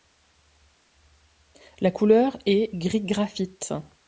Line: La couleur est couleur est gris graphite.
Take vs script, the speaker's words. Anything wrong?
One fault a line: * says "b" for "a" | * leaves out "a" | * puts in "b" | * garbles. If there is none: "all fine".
* leaves out "couleur est"